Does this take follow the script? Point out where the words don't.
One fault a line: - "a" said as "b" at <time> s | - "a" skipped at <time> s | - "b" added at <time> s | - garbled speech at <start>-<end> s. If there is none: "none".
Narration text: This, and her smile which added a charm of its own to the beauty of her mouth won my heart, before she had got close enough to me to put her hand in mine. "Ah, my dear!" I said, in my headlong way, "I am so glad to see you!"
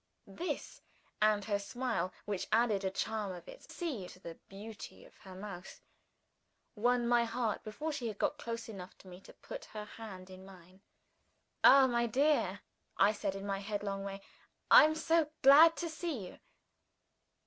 - "own" said as "see" at 3.7 s